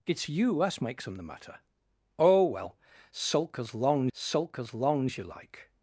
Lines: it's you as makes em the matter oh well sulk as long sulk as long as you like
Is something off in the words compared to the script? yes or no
no